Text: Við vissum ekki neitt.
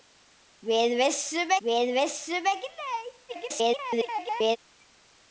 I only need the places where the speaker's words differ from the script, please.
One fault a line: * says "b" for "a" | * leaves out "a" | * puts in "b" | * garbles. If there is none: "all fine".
* puts in "við vissum"
* garbles